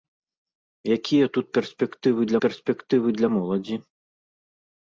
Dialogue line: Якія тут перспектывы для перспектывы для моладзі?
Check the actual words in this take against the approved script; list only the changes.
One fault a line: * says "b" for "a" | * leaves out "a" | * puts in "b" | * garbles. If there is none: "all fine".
all fine